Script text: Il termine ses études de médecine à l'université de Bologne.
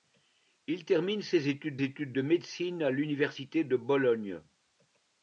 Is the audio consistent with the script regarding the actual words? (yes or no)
no